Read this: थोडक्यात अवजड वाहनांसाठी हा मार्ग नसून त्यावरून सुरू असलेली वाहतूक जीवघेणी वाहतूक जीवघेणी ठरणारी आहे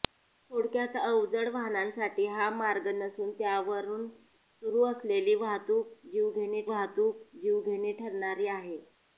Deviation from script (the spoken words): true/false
false